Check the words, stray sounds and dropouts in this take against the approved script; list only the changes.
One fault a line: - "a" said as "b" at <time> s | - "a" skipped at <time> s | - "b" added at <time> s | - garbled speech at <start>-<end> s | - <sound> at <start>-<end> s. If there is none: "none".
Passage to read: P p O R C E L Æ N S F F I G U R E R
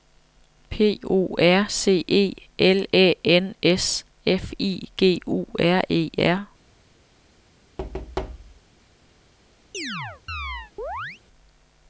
- "p" skipped at 1.0 s
- "F" skipped at 4.5 s
- thud at 7.8-8.6 s
- chirp at 9.7-11.2 s